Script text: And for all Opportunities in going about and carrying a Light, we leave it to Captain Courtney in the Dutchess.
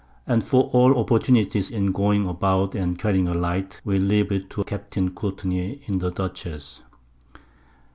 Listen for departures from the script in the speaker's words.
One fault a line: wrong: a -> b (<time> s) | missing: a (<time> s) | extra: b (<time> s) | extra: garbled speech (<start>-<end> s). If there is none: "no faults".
no faults